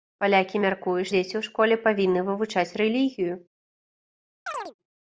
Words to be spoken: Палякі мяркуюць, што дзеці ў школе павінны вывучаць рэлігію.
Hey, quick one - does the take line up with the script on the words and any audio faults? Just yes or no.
no